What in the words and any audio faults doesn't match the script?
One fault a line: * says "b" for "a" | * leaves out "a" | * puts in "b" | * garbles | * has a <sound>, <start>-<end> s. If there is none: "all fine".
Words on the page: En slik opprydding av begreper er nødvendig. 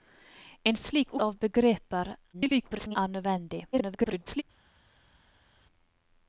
* leaves out "opprydding"
* garbles
* garbles